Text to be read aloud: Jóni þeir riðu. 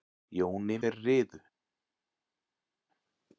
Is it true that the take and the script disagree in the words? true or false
false